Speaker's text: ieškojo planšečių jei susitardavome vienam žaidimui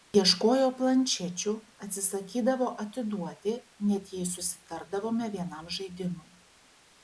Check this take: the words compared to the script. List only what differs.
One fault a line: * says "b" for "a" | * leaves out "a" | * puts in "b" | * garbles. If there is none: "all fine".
* puts in "atsisakydavo atiduoti net"